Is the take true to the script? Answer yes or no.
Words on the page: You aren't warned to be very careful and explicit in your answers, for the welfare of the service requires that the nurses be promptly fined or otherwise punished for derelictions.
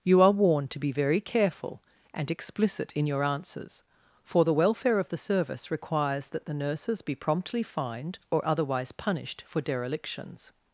no